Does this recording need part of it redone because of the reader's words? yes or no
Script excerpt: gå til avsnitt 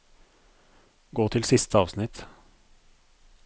yes